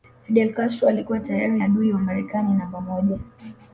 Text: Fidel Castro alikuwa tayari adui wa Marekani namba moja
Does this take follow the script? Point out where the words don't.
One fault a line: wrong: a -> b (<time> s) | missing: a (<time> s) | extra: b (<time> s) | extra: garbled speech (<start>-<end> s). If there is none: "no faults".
no faults